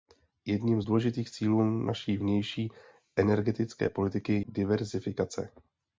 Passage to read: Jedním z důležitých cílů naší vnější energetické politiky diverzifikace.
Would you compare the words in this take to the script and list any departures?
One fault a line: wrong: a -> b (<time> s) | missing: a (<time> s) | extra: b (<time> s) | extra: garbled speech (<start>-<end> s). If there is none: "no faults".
no faults